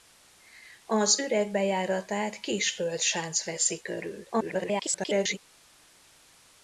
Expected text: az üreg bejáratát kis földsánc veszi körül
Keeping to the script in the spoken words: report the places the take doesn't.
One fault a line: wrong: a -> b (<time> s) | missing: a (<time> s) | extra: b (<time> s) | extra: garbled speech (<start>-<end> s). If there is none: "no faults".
extra: garbled speech (4.3-5.4 s)